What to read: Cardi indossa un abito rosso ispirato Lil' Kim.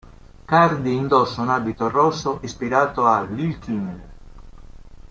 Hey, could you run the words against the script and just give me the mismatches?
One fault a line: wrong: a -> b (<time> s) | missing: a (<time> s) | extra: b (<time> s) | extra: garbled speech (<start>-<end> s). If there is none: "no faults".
extra: a (3.0 s)